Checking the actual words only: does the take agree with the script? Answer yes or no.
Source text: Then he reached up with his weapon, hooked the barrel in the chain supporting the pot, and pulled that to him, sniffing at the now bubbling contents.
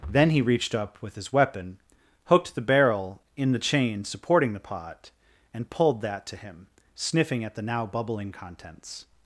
yes